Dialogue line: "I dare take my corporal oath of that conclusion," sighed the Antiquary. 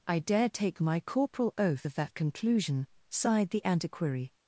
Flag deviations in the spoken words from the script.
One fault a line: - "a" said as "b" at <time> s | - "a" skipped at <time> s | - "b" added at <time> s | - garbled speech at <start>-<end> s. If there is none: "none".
none